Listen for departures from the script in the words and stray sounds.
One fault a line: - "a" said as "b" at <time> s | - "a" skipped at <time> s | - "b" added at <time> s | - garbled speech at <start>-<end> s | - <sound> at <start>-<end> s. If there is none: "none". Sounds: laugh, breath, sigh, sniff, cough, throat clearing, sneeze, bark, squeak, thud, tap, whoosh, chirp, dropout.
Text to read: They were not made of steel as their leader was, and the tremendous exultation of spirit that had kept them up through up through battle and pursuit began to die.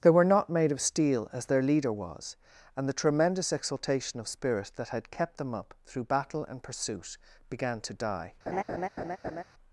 - "up through" skipped at 6.0 s
- laugh at 8.5-9.4 s